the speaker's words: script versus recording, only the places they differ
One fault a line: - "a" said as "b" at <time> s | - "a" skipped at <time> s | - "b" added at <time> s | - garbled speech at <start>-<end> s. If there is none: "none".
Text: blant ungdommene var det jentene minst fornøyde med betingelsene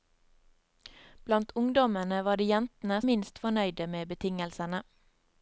none